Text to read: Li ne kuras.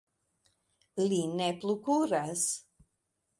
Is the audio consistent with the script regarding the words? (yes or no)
no